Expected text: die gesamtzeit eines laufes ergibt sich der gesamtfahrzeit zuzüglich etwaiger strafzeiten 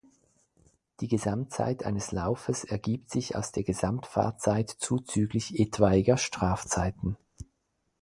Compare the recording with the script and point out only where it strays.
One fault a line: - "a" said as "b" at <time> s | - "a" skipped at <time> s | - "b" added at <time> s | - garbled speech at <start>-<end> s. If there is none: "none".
- "aus" added at 3.4 s